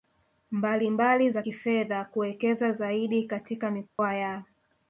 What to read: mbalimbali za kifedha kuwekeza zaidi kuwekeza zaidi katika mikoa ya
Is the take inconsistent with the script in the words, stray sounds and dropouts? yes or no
yes